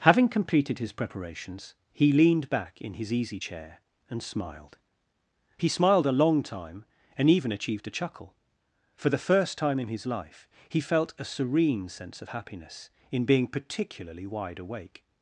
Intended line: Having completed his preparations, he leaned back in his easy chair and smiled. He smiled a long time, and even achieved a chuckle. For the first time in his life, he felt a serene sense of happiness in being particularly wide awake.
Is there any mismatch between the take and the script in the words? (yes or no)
no